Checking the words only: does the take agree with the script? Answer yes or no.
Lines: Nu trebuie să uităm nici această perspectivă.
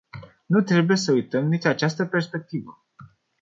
yes